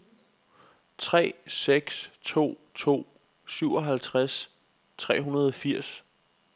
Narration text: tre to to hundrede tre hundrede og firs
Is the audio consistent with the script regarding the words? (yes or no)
no